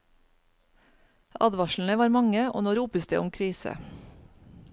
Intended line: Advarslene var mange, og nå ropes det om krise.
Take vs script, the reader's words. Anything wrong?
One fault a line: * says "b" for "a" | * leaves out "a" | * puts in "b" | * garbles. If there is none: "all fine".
all fine